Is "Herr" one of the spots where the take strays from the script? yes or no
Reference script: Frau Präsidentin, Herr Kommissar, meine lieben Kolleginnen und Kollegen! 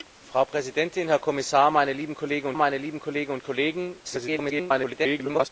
no